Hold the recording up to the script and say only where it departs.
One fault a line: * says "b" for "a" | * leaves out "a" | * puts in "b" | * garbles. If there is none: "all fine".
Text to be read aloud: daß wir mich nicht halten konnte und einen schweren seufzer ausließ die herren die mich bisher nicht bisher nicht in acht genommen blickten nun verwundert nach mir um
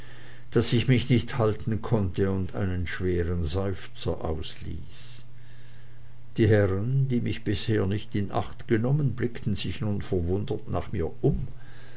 * says "ich" for "wir"
* leaves out "bisher nicht"
* puts in "sich"